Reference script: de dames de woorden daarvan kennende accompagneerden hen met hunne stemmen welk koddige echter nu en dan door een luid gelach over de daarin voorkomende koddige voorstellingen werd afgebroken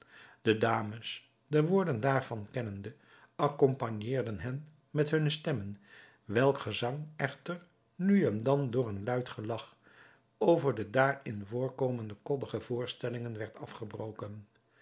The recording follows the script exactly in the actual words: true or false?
false